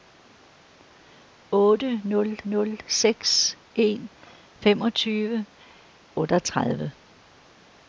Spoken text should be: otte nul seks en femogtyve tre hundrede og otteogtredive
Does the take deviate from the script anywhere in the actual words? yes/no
yes